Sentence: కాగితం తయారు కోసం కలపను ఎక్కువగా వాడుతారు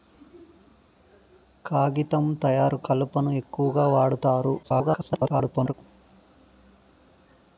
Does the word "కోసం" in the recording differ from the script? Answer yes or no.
yes